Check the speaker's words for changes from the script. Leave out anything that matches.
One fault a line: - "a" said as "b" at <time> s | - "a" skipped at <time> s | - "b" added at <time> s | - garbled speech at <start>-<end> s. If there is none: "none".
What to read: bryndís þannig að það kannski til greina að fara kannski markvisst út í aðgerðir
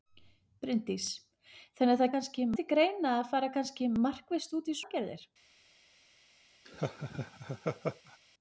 none